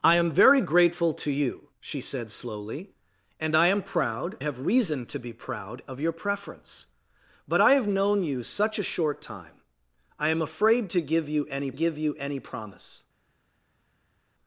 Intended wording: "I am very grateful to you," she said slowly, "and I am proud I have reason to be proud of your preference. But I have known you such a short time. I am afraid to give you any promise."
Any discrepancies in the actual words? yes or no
yes